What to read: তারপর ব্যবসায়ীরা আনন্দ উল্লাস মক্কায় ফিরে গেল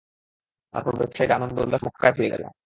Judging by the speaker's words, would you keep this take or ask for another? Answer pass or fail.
pass